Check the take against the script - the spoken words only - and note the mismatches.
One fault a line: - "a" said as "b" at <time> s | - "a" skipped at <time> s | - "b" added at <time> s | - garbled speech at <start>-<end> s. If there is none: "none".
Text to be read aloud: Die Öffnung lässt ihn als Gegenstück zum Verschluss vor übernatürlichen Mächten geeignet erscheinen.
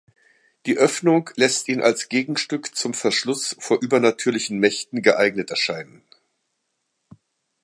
none